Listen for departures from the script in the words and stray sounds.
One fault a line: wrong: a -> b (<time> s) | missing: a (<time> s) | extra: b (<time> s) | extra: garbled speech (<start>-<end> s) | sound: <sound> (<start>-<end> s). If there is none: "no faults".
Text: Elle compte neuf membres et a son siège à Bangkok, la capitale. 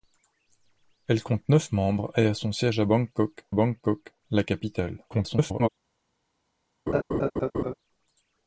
extra: Bangkok (3.5 s)
extra: garbled speech (5.1-5.7 s)
sound: laugh (6.9-7.7 s)